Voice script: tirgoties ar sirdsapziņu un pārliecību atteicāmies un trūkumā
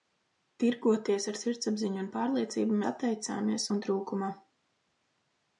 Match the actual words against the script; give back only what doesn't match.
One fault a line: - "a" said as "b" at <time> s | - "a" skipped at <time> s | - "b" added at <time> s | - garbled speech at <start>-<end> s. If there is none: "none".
none